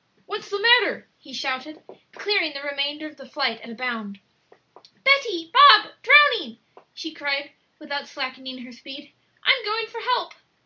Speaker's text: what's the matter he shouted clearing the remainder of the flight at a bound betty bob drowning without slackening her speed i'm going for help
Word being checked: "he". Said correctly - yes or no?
yes